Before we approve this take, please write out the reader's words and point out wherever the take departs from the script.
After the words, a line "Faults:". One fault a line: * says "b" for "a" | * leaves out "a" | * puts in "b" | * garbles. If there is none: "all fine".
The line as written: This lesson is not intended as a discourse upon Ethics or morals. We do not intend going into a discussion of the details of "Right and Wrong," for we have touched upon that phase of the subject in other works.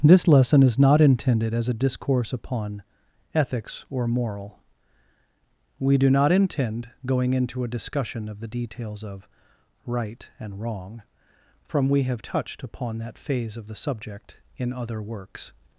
This lesson is not intended as a discourse upon Ethics or moral. We do not intend going into a discussion of the details of "Right and Wrong," from we have touched upon that phase of the subject in other works.
Faults:
* says "moral" for "morals"
* says "from" for "for"